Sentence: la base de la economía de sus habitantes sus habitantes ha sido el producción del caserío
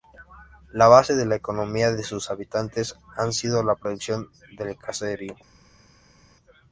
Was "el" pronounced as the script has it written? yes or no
no